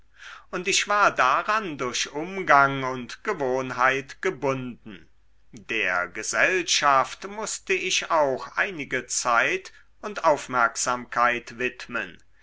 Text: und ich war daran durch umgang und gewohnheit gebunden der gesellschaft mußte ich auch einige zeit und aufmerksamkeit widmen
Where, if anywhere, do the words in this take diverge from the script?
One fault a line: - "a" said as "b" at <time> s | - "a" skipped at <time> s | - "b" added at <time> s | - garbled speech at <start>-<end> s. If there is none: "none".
none